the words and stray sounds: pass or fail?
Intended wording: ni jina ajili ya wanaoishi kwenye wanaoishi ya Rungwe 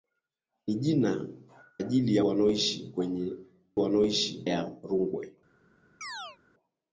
fail